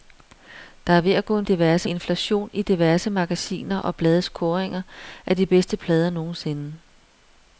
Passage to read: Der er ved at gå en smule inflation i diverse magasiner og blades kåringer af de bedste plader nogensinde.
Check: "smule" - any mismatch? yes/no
yes